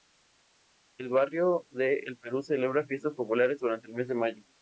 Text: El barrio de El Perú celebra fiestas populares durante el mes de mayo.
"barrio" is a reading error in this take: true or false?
false